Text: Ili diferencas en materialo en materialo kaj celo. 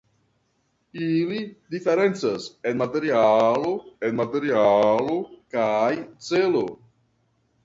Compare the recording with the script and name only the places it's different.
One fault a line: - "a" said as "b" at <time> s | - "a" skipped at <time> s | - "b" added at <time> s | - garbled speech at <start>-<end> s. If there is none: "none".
none